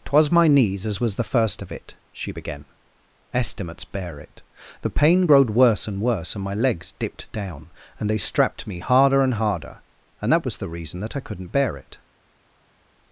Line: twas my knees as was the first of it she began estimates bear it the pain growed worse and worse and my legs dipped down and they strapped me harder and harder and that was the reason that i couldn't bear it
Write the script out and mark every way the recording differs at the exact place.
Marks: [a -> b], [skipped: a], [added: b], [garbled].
twas my knees as was the first of it she began estimates bear it the pain growed worse and worse and my legs dipped down and they strapped me harder and harder and that was the reason that i couldn't bear it